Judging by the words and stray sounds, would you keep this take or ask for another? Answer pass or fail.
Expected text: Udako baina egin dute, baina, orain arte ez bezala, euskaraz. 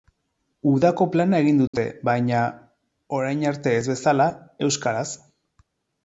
fail